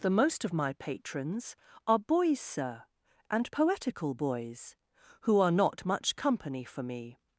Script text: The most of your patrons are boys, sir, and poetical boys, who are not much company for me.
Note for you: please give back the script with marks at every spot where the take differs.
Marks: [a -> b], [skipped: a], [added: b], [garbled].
The most of [your -> my] patrons are boys, sir, and poetical boys, who are not much company for me.